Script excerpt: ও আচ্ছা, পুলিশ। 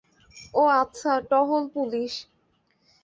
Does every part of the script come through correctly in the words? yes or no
no